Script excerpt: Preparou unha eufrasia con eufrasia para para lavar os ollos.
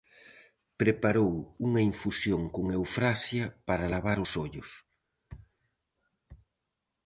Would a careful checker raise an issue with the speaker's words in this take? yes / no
yes